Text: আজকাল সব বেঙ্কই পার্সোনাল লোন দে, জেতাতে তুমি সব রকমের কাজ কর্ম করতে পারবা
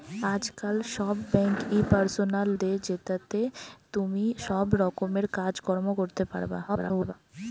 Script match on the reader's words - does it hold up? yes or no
no